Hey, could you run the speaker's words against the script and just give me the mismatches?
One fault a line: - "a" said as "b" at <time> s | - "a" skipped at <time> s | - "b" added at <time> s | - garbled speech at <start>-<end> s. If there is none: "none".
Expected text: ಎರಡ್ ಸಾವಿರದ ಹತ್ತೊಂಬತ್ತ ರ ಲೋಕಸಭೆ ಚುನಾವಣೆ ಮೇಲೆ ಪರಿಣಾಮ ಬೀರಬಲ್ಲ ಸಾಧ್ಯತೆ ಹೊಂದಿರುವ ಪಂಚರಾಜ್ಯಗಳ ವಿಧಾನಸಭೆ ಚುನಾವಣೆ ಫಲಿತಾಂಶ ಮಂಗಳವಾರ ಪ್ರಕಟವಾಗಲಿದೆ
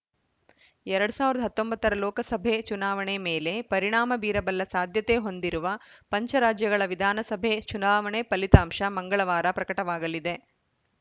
none